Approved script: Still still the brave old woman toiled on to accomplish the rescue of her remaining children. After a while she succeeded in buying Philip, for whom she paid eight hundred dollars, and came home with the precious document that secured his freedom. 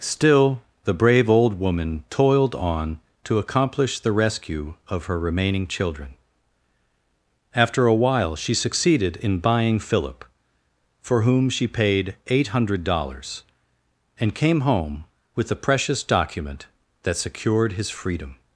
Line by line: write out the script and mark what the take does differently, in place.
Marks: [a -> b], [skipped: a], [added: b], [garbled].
Still [skipped: still] the brave old woman toiled on to accomplish the rescue of her remaining children. After a while she succeeded in buying Philip, for whom she paid eight hundred dollars, and came home with the precious document that secured his freedom.